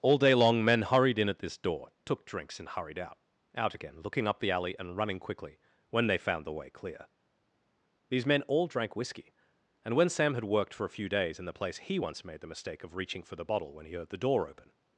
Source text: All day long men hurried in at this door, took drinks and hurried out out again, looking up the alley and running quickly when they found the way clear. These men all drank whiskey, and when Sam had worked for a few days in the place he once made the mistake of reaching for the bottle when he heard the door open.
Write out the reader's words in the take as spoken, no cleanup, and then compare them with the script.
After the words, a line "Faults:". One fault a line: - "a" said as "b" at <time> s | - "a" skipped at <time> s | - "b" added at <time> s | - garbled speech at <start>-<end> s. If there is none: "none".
All day long men hurried in at this door, took drinks and hurried out out again, looking up the alley and running quickly when they found the way clear. These men all drank whiskey, and when Sam had worked for a few days in the place he once made the mistake of reaching for the bottle when he heard the door open.
Faults:
none